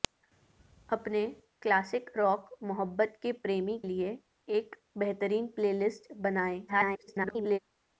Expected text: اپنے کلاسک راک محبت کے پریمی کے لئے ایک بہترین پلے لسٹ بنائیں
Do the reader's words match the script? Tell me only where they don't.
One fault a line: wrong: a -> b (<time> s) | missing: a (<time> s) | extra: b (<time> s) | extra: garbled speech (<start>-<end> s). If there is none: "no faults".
missing: کے (3.8 s)
extra: garbled speech (6.7-7.6 s)